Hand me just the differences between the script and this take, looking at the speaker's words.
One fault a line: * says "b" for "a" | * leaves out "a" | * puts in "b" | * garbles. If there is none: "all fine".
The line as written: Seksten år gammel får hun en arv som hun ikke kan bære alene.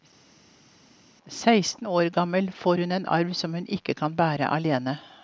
all fine